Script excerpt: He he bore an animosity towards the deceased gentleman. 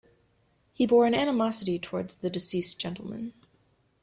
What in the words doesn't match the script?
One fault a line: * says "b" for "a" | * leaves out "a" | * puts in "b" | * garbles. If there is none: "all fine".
* leaves out "he"